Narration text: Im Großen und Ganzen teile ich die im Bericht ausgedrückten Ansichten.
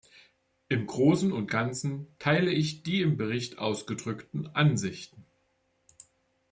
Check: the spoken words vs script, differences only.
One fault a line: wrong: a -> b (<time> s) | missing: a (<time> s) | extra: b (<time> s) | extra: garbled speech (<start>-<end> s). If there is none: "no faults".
no faults